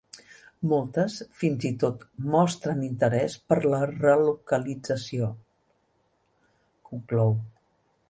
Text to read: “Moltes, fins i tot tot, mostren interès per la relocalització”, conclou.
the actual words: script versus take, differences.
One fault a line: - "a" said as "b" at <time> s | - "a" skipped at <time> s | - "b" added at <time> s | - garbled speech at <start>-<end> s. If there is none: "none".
- "tot" skipped at 2.0 s